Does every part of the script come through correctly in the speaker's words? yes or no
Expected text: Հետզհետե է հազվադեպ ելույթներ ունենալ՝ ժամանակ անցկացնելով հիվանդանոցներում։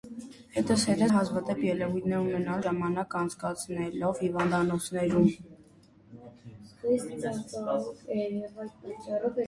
yes